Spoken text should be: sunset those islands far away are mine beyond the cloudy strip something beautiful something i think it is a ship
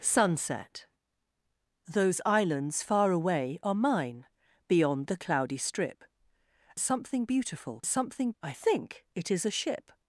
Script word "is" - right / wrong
right